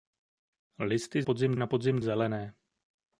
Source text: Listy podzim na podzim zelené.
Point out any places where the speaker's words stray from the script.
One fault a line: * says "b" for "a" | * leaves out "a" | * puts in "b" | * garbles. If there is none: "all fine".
all fine